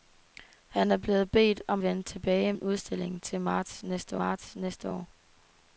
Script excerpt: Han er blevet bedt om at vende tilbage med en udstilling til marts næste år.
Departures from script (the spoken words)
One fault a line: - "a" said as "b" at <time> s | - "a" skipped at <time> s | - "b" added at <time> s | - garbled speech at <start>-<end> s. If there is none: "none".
- "at" skipped at 1.8 s
- "med" skipped at 2.5 s
- "marts næste" added at 4.1 s